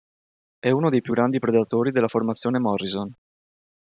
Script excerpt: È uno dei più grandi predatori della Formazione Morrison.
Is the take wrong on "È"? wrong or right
right